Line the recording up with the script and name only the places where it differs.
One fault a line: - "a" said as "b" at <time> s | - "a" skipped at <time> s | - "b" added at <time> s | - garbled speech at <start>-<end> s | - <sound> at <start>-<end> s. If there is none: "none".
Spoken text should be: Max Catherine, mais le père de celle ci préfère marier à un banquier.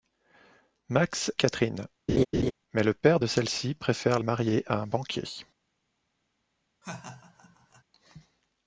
- laugh at 2.1-2.5 s
- laugh at 6.8-7.8 s